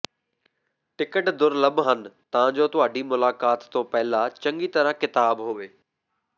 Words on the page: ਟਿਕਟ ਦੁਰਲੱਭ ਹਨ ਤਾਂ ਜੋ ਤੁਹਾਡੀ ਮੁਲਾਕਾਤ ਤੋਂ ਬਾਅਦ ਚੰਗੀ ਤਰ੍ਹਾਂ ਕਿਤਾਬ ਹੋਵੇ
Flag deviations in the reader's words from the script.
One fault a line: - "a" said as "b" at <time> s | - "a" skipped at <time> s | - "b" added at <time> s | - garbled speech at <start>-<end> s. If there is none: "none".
- "ਬਾਅਦ" said as "ਪਹਿਲਾਂ" at 3.8 s